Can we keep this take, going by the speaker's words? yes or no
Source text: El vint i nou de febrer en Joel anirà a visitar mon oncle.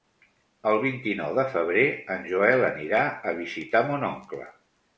yes